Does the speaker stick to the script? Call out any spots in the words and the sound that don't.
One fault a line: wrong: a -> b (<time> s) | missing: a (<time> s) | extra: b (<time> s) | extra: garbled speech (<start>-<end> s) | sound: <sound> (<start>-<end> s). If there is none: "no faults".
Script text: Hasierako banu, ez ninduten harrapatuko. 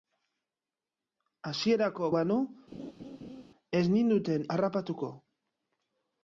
sound: laugh (2.7-3.4 s)